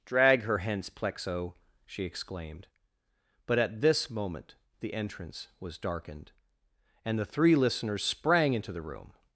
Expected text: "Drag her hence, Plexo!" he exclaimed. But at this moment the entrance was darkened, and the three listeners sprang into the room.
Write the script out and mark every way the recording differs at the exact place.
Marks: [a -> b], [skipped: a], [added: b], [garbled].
"Drag her hence, Plexo!" [he -> she] exclaimed. But at this moment the entrance was darkened, and the three listeners sprang into the room.